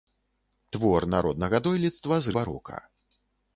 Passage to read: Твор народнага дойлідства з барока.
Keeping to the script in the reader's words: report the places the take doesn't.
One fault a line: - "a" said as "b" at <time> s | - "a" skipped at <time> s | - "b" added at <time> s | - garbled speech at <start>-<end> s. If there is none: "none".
none